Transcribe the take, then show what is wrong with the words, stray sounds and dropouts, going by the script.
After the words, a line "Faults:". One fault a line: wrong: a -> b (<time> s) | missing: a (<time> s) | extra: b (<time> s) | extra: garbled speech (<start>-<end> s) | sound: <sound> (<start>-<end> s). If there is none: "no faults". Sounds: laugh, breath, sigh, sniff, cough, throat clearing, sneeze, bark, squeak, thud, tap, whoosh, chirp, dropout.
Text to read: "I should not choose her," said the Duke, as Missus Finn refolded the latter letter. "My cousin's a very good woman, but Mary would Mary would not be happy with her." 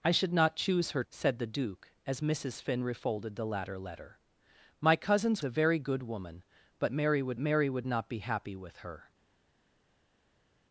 "I should not choose her," said the Duke, as Missus Finn refolded the latter letter. "My cousin's a very good woman, but Mary would Mary would not be happy with her."
Faults:
no faults